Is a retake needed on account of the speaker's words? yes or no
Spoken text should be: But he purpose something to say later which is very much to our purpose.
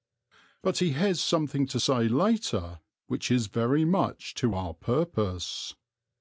yes